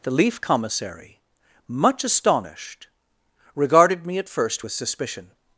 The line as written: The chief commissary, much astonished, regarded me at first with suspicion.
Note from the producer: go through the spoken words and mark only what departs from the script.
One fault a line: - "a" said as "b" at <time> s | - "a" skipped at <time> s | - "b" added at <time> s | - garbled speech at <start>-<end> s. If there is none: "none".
- "chief" said as "leaf" at 0.1 s